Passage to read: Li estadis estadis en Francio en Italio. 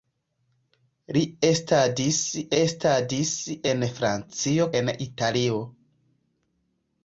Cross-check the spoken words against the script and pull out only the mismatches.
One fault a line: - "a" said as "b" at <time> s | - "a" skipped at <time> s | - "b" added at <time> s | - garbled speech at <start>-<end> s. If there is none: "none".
none